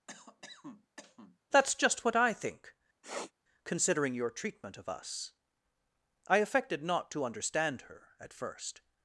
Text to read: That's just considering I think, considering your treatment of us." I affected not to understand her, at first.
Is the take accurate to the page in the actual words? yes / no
no